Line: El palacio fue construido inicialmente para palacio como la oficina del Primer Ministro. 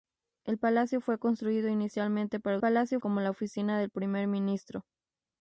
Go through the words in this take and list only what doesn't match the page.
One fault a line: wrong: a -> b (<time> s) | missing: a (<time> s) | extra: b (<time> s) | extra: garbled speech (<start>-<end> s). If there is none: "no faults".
no faults